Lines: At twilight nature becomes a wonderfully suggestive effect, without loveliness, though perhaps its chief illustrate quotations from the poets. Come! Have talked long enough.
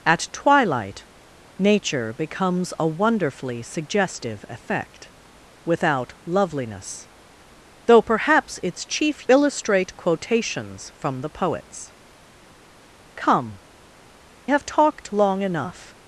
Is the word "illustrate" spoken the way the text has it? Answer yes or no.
yes